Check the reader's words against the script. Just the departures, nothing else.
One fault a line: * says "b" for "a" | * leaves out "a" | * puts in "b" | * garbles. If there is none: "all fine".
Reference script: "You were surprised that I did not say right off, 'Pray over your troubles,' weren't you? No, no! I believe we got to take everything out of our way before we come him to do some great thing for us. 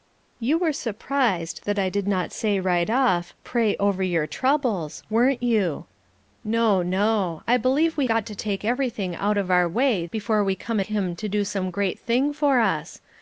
all fine